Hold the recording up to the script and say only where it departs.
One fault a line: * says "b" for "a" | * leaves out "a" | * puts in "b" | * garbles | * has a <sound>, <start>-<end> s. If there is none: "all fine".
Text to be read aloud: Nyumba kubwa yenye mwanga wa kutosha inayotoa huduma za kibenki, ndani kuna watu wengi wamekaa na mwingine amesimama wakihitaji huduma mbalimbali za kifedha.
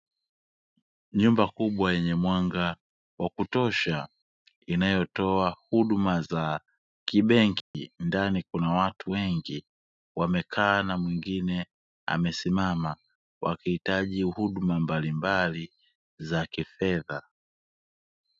* has a dropout, 7.6-7.7 s